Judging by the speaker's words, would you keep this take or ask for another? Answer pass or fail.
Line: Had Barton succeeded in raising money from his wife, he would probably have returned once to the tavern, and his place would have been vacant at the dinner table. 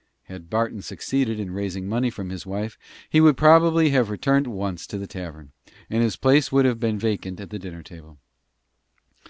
pass